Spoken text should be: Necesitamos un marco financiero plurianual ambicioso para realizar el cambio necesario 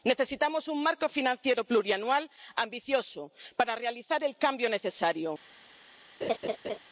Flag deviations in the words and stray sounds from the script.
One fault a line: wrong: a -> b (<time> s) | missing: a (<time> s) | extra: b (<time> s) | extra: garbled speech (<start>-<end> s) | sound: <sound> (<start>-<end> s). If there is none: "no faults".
sound: laugh (6.2-6.8 s)